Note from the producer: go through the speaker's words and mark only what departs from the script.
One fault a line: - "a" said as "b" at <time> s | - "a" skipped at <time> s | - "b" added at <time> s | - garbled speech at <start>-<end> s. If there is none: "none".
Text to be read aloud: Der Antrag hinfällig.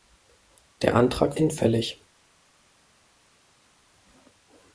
none